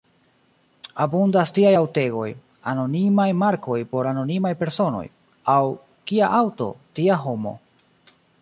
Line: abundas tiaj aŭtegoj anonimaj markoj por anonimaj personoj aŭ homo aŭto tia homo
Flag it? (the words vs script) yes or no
yes